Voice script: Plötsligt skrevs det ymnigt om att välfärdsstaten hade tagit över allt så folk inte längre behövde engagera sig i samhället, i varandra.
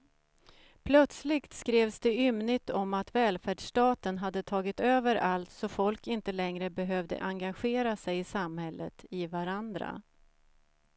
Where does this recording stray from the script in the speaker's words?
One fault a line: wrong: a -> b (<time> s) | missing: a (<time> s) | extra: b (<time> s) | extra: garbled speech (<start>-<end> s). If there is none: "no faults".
no faults